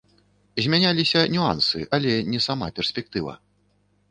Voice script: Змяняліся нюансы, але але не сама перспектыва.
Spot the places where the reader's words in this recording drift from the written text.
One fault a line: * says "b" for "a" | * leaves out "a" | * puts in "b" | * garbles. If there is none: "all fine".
* leaves out "але"